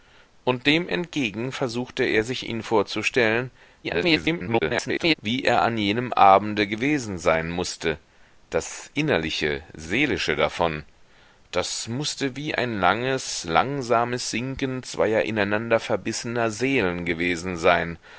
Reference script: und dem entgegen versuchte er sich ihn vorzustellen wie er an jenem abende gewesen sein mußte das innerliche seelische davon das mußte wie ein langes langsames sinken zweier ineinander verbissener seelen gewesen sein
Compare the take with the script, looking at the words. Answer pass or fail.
fail